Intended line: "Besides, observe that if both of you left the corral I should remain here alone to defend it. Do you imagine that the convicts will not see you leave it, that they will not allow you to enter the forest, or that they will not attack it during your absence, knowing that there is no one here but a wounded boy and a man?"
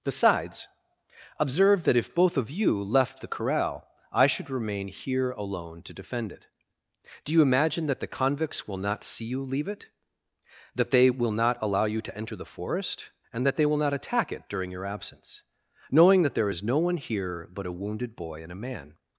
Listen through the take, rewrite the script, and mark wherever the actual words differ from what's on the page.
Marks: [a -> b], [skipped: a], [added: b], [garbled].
"Besides, observe that if both of you left the corral I should remain here alone to defend it. Do you imagine that the convicts will not see you leave it, that they will not allow you to enter the forest, [or -> and] that they will not attack it during your absence, knowing that there is no one here but a wounded boy and a man?"